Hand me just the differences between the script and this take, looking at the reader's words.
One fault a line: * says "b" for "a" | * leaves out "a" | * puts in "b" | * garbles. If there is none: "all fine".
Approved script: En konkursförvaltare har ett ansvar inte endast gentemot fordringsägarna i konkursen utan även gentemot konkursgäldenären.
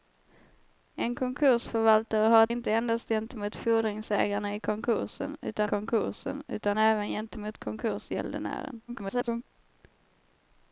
* leaves out "ansvar"
* puts in "konkursen utan"
* garbles